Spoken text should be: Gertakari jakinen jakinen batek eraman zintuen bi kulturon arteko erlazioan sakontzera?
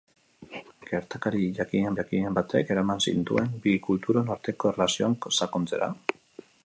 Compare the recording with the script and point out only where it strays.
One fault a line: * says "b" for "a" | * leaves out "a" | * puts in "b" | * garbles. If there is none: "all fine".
all fine